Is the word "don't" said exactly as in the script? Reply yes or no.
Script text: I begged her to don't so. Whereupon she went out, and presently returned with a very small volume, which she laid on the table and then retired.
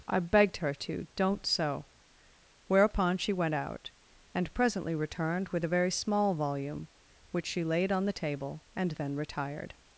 yes